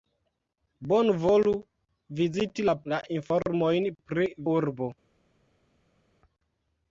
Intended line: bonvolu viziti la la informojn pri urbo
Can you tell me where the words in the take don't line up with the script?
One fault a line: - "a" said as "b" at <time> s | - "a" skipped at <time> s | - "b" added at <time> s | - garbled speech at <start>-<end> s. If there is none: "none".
none